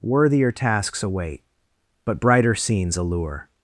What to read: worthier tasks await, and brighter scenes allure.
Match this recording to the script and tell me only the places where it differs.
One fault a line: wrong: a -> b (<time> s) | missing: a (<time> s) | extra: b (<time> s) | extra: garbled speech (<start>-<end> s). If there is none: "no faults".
wrong: and -> but (2.0 s)